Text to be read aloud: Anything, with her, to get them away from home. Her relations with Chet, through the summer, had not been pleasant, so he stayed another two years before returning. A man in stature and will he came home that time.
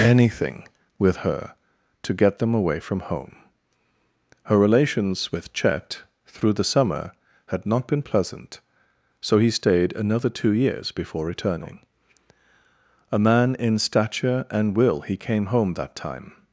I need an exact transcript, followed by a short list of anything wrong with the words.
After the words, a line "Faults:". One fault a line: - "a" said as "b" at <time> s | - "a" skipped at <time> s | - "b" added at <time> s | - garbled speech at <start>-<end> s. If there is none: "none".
Anything, with her, to get them away from home. Her relations with Chet, through the summer, had not been pleasant, so he stayed another two years before returning. A man in stature and will he came home that time.
Faults:
none